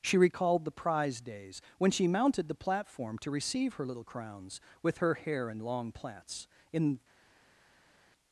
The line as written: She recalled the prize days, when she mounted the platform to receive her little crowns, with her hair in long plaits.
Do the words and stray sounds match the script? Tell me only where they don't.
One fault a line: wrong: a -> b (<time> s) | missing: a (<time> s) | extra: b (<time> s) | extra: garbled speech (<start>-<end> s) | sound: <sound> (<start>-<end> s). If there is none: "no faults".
extra: In (6.7 s)